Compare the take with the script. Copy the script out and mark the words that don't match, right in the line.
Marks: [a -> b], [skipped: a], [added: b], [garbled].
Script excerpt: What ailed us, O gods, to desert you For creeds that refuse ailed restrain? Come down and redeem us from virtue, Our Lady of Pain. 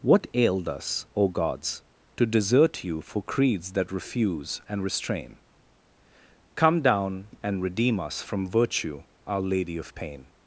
What ailed us, O gods, to desert you For creeds that refuse [ailed -> and] restrain? Come down and redeem us from virtue, Our Lady of Pain.